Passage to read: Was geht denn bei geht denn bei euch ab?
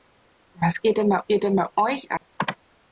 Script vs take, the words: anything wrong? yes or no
no